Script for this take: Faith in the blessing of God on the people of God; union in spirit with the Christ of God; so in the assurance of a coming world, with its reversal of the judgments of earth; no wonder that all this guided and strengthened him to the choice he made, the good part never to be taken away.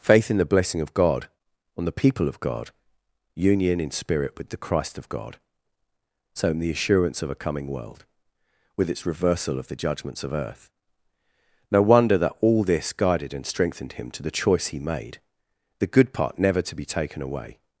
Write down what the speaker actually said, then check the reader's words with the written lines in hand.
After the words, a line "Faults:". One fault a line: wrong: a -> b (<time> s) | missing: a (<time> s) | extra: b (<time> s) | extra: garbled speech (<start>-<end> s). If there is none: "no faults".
Faith in the blessing of God on the people of God; union in spirit with the Christ of God; so in the assurance of a coming world, with its reversal of the judgments of earth; no wonder that all this guided and strengthened him to the choice he made, the good part never to be taken away.
Faults:
no faults